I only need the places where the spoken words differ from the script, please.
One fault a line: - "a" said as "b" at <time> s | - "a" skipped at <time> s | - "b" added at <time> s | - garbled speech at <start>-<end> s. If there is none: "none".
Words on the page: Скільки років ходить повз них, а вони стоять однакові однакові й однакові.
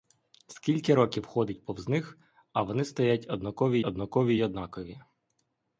none